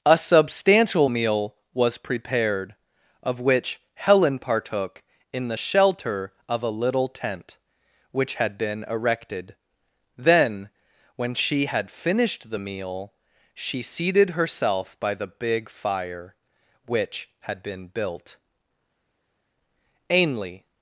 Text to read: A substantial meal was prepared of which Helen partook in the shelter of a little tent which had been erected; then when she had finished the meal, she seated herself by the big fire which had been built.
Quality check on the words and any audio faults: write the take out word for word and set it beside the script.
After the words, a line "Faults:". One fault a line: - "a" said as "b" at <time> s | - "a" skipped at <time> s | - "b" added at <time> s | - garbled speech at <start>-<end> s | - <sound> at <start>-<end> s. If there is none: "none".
A substantial meal was prepared of which Helen partook in the shelter of a little tent which had been erected; then when she had finished the meal, she seated herself by the big fire which had been built. Ainley
Faults:
- "Ainley" added at 20.1 s